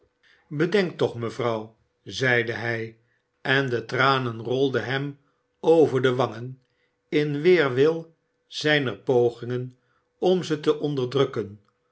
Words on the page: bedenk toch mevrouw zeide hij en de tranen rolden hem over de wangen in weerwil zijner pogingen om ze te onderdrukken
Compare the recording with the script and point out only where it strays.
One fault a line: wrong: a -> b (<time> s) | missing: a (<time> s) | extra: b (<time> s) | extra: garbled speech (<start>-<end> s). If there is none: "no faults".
no faults